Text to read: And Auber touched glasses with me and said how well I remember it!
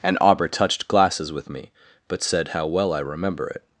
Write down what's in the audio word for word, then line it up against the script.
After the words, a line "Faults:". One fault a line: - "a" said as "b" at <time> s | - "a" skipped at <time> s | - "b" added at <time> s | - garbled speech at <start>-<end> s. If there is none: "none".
And Auber touched glasses with me but said how well I remember it!
Faults:
- "and" said as "but" at 2.1 s